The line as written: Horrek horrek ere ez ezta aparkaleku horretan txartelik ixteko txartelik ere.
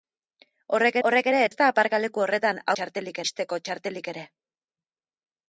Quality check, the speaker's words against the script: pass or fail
pass